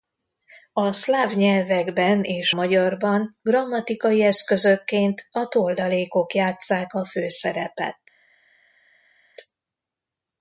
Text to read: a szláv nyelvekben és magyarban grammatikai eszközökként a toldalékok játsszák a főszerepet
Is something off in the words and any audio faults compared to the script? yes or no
no